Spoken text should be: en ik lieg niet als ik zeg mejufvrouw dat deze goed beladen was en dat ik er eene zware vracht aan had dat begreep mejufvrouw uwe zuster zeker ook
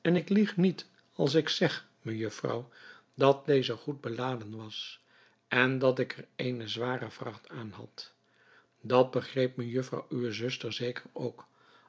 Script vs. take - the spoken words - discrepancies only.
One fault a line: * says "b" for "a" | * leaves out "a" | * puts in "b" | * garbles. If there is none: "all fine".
all fine